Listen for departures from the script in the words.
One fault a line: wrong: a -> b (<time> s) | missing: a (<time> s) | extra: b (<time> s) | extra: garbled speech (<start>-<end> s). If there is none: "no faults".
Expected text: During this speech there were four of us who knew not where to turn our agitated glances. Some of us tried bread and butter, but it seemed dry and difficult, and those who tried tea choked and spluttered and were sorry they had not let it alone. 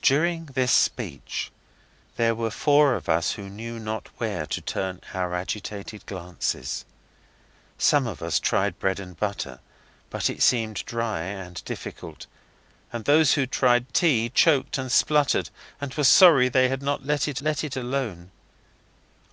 extra: let it (17.4 s)